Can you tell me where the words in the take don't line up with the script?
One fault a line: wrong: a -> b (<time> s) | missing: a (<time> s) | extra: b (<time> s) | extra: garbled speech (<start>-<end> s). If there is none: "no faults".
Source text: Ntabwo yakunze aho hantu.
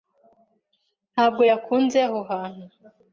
no faults